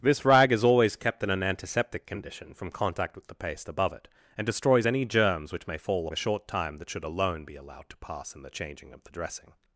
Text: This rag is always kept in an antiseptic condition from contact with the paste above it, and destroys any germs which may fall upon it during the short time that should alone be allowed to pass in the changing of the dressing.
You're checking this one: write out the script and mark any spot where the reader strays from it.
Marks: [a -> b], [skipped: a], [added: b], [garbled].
This rag is always kept in an antiseptic condition from contact with the paste above it, and destroys any germs which may fall [skipped: upon it during] the short time that should alone be allowed to pass in the changing of the dressing.